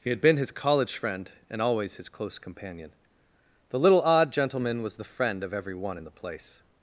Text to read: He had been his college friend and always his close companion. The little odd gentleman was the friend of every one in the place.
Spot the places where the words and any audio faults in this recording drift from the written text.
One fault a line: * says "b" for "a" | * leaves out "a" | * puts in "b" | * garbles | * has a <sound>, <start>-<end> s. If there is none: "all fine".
all fine